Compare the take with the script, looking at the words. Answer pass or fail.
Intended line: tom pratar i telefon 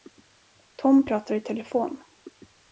pass